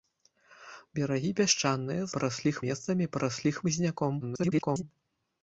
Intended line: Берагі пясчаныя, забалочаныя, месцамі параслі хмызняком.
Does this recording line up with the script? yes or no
no